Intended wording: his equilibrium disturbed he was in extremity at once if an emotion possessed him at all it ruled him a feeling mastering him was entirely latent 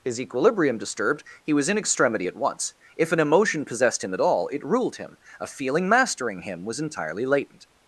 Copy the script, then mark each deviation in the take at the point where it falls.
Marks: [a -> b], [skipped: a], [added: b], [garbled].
his equilibrium disturbed he was in extremity at once if an emotion possessed him at all it ruled him a feeling mastering him was entirely latent